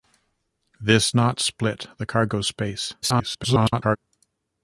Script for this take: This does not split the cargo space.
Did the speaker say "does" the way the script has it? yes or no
no